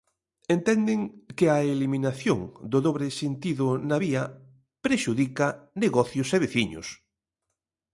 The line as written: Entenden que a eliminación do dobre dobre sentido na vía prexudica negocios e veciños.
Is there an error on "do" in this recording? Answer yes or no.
no